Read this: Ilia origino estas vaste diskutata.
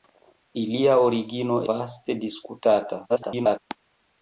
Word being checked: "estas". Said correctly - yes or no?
no